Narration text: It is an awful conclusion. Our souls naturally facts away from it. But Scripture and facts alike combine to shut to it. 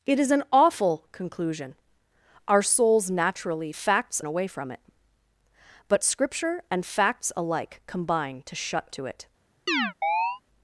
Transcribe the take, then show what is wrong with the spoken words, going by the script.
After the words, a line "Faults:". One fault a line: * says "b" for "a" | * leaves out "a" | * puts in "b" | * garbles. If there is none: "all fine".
It is an awful conclusion. Our souls naturally facts away from it. But Scripture and facts alike combine to shut to it.
Faults:
all fine